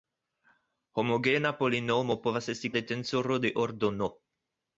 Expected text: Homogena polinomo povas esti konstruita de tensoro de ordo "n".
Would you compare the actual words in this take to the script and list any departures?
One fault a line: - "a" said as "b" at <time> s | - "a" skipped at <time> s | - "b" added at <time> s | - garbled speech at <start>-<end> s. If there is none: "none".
- "konstruita" skipped at 2.7 s